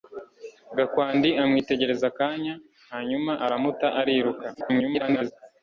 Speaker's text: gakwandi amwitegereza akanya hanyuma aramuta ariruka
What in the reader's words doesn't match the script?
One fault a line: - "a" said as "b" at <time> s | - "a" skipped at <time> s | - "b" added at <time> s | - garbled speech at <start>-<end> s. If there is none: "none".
- garbled speech at 4.5-5.3 s